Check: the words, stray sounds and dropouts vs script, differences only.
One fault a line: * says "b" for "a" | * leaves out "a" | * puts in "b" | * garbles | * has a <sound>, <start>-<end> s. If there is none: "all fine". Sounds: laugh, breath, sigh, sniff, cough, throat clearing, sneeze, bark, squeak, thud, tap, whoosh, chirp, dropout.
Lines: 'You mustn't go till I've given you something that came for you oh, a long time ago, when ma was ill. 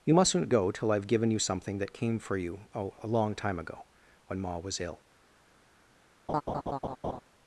* has a laugh, 6.3-7.2 s